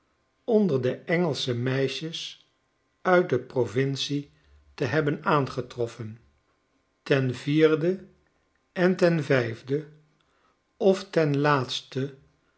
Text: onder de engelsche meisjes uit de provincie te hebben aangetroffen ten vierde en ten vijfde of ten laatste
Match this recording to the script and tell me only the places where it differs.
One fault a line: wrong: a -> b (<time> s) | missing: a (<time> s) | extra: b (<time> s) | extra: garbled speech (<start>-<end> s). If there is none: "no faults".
no faults